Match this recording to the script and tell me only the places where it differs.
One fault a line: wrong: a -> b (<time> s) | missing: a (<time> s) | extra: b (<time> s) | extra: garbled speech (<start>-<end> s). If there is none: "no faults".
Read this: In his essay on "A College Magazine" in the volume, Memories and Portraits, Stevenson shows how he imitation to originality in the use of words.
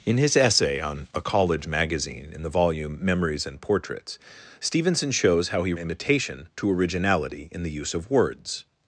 no faults